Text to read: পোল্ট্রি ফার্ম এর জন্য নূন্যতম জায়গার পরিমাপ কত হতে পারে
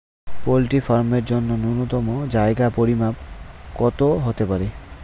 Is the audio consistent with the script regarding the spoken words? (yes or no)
yes